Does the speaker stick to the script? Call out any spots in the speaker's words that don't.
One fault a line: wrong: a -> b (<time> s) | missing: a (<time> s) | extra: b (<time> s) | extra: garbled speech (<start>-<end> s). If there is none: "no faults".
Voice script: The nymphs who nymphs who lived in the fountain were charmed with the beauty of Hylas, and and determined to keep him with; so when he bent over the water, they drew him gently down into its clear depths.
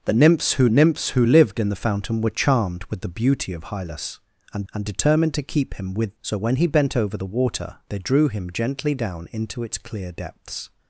no faults